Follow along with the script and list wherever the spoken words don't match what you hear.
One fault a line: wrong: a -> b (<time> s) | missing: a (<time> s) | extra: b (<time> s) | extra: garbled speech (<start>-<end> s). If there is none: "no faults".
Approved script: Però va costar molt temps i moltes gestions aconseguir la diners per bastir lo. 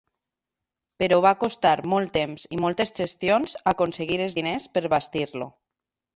wrong: la -> els (4.3 s)